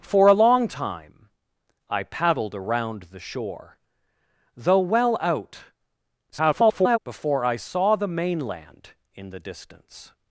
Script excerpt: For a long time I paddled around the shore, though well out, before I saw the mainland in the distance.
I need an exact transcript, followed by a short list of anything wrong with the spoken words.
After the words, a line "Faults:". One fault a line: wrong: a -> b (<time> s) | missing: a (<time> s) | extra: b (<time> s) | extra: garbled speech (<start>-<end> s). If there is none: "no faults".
For a long time I paddled around the shore, though well out, [garbled] before I saw the mainland in the distance.
Faults:
extra: garbled speech (6.3-7.0 s)